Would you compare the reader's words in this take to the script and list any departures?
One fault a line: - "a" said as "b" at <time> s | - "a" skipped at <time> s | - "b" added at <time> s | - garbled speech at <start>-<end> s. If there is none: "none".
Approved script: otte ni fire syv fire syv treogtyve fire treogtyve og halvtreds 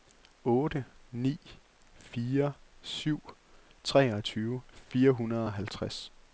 - "fire syv" skipped at 3.2 s
- "treogtyve" said as "hundrede" at 5.1 s